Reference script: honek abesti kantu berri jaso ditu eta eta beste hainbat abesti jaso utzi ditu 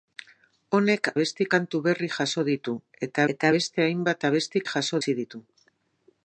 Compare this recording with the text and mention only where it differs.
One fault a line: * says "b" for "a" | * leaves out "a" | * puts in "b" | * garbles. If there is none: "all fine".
all fine